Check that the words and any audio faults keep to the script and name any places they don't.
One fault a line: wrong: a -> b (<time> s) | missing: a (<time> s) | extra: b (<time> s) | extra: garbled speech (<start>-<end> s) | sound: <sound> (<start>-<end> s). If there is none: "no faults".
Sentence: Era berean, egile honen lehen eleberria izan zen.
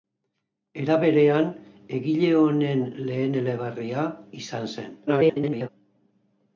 extra: garbled speech (5.1-5.7 s)